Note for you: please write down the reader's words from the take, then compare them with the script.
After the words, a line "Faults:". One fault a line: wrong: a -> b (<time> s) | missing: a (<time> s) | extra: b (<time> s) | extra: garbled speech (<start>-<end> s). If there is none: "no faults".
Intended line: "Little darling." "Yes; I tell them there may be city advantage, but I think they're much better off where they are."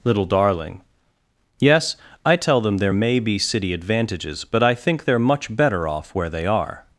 "Little darling." "Yes; I tell them there may be city advantages, but I think they're much better off where they are."
Faults:
wrong: advantage -> advantages (3.7 s)